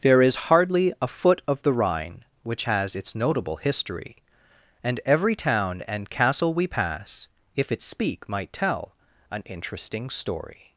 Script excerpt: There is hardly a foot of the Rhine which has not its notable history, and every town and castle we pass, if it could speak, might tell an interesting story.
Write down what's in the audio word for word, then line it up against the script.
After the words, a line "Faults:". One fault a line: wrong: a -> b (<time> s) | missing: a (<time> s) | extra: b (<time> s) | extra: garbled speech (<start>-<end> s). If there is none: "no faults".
There is hardly a foot of the Rhine which has its notable history, and every town and castle we pass, if it speak, might tell an interesting story.
Faults:
missing: not (2.9 s)
missing: could (7.8 s)